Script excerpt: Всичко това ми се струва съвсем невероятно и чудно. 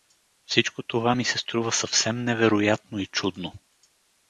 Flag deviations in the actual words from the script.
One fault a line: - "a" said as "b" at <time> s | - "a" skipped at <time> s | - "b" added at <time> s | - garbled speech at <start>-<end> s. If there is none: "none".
none